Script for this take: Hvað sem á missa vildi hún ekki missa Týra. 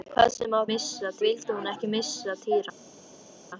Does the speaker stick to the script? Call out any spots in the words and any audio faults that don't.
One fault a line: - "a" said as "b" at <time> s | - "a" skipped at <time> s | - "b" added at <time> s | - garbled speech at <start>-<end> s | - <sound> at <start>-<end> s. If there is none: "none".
none